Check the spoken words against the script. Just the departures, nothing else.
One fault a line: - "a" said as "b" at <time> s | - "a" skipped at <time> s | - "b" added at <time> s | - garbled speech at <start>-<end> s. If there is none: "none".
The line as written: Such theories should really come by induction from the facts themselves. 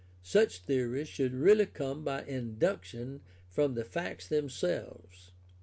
none